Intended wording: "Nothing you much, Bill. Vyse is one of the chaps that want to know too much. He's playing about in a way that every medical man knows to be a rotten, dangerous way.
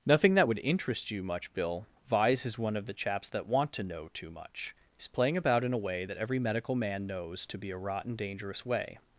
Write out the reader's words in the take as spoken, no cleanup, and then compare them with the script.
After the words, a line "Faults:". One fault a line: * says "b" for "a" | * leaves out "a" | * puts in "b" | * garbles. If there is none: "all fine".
"Nothing that would interest you much, Bill. Vyse is one of the chaps that want to know too much. He's playing about in a way that every medical man knows to be a rotten, dangerous way.
Faults:
* puts in "that would interest"